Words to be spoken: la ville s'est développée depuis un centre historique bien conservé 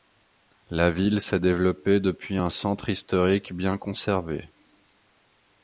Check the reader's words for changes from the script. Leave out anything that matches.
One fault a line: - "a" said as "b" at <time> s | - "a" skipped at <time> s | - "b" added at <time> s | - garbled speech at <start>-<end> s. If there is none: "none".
none